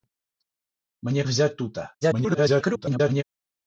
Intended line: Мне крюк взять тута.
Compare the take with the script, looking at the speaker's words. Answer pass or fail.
fail